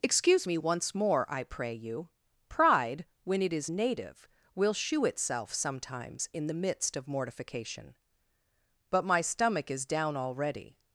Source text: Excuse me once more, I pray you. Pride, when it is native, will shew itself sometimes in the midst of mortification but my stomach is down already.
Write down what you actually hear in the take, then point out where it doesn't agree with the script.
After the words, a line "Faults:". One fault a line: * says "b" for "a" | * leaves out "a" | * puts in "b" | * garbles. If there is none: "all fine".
Excuse me once more, I pray you. Pride, when it is native, will shew itself sometimes in the midst of mortification but my stomach is down already.
Faults:
all fine